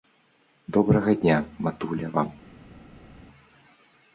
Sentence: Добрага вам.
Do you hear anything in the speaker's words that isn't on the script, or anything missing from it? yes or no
yes